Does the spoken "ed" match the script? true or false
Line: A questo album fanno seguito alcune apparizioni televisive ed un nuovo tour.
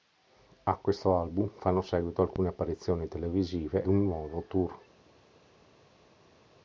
false